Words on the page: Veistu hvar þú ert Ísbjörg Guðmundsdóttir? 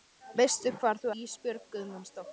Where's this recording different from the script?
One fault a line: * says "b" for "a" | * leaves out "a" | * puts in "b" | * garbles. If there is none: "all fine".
* leaves out "ert"